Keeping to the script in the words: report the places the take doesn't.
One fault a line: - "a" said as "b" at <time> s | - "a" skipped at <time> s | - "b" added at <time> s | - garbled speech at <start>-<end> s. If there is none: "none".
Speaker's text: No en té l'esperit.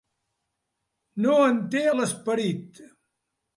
none